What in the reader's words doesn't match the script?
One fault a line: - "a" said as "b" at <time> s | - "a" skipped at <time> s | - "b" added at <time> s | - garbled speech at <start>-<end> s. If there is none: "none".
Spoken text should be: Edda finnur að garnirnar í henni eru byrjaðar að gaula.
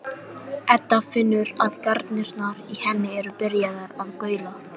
none